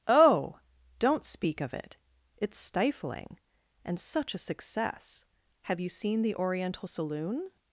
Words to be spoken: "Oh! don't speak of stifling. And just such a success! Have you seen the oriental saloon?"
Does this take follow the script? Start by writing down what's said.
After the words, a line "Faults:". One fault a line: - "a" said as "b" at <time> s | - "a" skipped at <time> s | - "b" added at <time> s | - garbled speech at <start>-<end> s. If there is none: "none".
"Oh! don't speak of it, it's stifling. And such a success! Have you seen the oriental saloon?"
Faults:
- "it it's" added at 1.7 s
- "just" skipped at 4.0 s